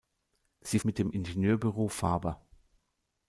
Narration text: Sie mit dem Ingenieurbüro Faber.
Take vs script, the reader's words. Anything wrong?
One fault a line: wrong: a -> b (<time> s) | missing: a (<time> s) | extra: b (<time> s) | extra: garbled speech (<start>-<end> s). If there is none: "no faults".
no faults